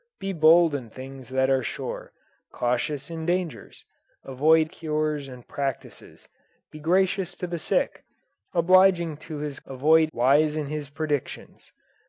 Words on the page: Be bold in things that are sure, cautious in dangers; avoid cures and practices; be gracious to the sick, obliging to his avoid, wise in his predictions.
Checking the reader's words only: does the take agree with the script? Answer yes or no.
yes